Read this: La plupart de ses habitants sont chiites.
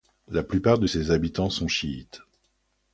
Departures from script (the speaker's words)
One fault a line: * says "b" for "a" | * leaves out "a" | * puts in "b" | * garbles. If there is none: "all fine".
all fine